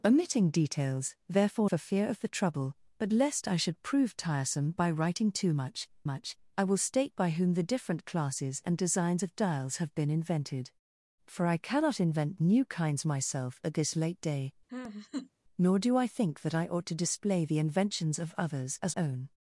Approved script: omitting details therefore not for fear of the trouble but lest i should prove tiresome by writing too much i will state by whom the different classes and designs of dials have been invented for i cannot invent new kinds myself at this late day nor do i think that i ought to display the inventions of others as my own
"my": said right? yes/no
no